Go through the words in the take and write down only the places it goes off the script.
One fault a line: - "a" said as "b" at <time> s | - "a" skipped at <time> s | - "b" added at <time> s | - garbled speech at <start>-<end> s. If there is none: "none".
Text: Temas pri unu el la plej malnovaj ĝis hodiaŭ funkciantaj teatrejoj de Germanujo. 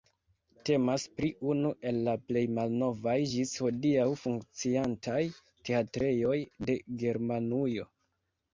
none